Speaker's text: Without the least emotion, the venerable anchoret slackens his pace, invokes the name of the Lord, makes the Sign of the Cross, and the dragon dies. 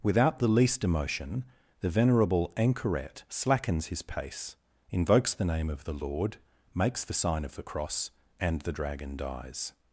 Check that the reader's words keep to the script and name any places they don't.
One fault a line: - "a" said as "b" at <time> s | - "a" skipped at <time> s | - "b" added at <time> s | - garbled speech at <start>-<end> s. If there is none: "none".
none